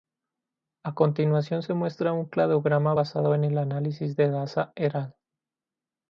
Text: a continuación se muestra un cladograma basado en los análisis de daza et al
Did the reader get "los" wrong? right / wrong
wrong